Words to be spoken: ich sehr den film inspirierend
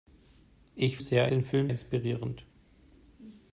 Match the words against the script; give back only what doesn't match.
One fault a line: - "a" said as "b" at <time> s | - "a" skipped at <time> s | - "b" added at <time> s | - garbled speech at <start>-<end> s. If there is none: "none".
none